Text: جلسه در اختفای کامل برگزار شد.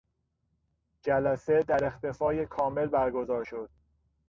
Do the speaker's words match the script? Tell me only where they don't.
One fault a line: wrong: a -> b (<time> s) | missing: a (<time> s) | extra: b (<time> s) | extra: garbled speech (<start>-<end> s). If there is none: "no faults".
no faults